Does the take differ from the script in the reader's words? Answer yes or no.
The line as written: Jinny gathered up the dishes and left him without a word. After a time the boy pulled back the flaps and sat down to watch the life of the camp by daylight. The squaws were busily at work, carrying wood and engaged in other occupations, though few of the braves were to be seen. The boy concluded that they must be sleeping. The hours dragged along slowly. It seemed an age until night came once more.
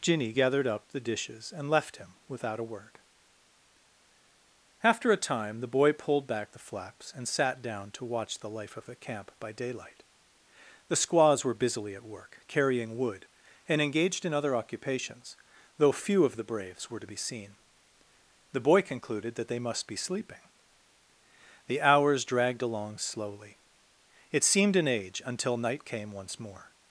no